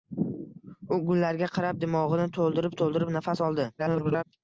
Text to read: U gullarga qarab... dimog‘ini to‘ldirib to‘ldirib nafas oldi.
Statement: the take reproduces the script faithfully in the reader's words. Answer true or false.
false